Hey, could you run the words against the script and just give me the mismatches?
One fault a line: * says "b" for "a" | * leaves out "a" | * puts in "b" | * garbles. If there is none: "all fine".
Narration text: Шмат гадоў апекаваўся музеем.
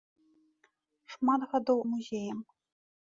* leaves out "апекаваўся"